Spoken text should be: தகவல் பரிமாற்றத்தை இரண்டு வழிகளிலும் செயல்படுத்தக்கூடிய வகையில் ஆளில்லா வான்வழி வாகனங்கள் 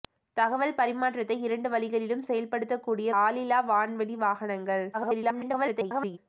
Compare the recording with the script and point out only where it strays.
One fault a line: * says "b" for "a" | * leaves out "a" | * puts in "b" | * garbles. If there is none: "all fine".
* leaves out "வகையில்"
* garbles